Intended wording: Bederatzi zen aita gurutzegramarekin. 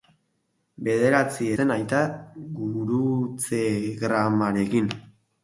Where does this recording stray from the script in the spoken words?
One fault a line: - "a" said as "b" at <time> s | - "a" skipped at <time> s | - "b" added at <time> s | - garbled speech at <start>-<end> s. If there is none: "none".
none